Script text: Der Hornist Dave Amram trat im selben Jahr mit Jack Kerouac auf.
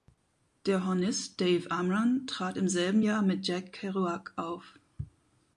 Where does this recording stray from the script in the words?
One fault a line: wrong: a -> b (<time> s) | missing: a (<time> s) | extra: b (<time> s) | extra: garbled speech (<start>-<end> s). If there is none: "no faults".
no faults